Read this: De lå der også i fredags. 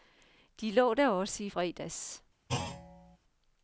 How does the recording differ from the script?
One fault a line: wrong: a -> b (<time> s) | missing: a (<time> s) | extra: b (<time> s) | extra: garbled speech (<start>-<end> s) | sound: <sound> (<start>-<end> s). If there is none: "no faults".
sound: thud (2.5-3.2 s)